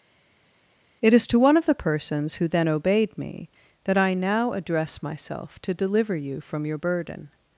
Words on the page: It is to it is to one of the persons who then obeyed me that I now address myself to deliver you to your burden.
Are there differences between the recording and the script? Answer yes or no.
yes